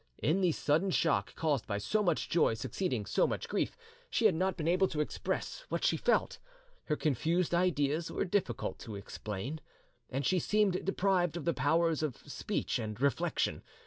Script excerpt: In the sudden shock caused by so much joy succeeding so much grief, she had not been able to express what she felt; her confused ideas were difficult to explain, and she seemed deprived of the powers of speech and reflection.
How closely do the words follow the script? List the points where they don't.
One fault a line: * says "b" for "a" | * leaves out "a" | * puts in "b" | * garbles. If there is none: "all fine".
all fine